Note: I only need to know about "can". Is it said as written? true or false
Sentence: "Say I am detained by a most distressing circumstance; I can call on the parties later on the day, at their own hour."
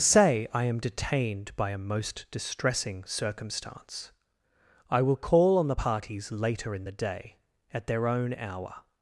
false